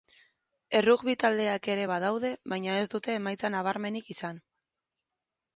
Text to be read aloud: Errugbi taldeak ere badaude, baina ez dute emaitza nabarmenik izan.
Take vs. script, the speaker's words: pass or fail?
pass